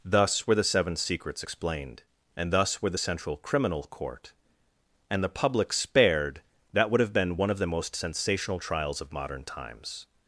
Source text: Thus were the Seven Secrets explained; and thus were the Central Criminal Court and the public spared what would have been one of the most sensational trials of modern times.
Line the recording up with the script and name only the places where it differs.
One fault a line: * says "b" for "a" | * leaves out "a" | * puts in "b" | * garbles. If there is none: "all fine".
* says "that" for "what"